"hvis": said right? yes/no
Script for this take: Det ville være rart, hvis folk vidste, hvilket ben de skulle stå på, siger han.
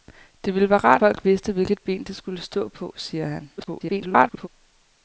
no